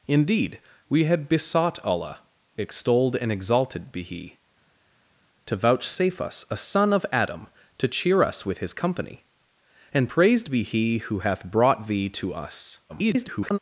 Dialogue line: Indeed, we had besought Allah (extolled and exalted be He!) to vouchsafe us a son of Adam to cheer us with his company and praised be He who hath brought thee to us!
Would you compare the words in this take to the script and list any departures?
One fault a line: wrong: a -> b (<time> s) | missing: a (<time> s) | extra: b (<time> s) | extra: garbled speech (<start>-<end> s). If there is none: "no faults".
extra: garbled speech (12.9-13.6 s)